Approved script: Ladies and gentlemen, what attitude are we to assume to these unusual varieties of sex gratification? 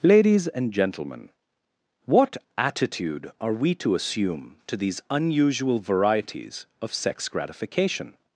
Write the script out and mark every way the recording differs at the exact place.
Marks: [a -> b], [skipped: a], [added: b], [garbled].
Ladies and gentlemen, what attitude are we to assume to these unusual varieties of sex gratification?